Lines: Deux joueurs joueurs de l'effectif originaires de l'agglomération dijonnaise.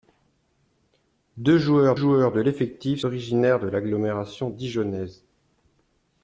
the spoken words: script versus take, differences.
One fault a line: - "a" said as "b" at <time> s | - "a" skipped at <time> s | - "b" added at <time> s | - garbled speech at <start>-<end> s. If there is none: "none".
none